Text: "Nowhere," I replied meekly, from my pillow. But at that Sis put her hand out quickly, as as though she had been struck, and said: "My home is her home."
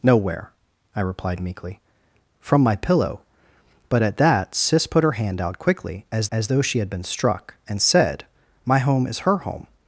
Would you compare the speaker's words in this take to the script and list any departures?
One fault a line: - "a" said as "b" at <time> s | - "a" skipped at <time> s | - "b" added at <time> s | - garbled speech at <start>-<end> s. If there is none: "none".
none